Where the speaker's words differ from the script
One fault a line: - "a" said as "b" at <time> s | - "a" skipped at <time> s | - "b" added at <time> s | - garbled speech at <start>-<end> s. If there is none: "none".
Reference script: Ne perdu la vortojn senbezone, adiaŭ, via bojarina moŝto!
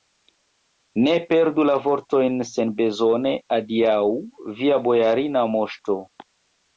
none